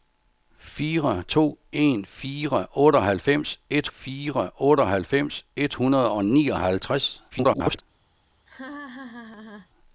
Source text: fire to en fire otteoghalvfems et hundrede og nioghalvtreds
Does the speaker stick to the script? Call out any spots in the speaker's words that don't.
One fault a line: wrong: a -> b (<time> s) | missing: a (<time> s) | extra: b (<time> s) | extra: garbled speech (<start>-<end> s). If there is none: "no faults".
extra: fire otteoghalvfems et (3.9 s)
extra: garbled speech (7.3-7.8 s)